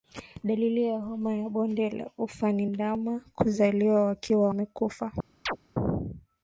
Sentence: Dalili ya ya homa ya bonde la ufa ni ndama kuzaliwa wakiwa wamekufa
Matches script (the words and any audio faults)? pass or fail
fail